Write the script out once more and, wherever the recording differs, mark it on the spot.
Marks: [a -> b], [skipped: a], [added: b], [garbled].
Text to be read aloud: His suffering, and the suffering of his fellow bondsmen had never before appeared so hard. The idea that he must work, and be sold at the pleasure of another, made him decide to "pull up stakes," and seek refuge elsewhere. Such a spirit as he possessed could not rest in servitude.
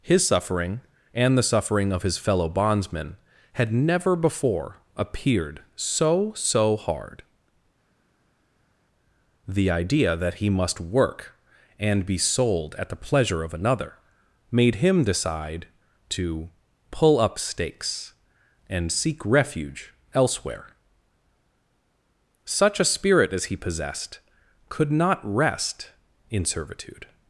His suffering, and the suffering of his fellow bondsmen had never before appeared so [added: so] hard. The idea that he must work, and be sold at the pleasure of another, made him decide to "pull up stakes," and seek refuge elsewhere. Such a spirit as he possessed could not rest in servitude.